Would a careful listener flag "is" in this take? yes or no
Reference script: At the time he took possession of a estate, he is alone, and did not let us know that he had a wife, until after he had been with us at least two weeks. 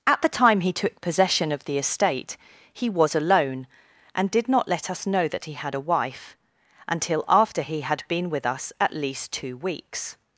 yes